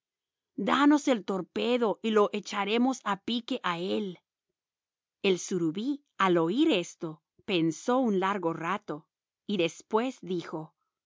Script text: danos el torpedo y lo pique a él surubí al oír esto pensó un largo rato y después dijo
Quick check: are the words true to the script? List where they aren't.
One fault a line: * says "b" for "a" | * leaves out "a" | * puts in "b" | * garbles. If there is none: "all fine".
* puts in "echaremos a"
* puts in "el"